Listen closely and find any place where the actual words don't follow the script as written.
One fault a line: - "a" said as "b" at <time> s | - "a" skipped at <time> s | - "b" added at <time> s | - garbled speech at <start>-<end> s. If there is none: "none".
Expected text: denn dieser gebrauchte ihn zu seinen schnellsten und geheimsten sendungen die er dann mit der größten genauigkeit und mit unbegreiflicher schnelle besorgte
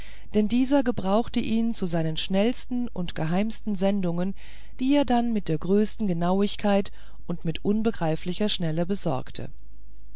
none